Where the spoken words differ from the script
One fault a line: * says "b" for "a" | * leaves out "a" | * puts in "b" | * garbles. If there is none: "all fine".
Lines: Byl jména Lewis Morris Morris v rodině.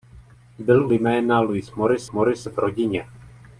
all fine